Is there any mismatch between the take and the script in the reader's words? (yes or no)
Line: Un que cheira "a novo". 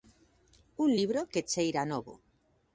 yes